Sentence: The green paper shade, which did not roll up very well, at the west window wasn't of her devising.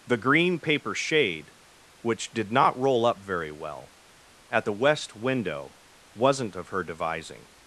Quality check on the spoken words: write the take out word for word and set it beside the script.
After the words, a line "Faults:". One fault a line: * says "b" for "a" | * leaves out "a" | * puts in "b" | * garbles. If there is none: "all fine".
The green paper shade, which did not roll up very well, at the west window wasn't of her devising.
Faults:
all fine